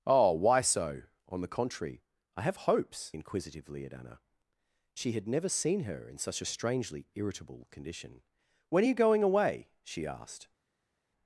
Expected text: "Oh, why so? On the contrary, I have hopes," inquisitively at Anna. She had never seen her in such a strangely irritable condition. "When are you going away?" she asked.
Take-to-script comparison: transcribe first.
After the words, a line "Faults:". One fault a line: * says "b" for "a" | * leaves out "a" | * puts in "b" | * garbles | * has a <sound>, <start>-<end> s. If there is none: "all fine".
"Oh, why so? On the contrary, I have hopes," inquisitively at Anna. She had never seen her in such a strangely irritable condition. "When are you going away?" she asked.
Faults:
all fine